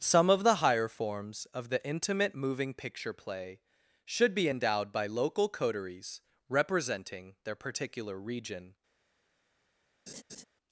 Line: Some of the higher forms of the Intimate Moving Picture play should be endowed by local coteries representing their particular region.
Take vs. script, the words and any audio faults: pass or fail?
fail